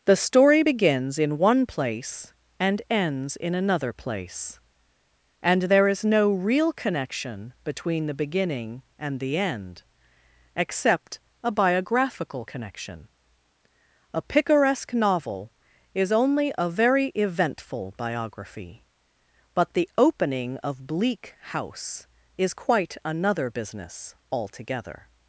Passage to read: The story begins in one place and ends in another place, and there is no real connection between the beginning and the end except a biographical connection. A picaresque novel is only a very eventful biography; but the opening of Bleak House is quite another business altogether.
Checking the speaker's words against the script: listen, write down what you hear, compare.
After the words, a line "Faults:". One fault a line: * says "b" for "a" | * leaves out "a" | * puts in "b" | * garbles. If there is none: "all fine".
The story begins in one place and ends in another place, and there is no real connection between the beginning and the end except a biographical connection. A picaresque novel is only a very eventful biography; but the opening of Bleak House is quite another business altogether.
Faults:
all fine